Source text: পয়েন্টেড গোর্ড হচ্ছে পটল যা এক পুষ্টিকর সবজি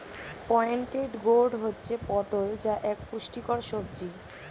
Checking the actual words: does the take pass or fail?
pass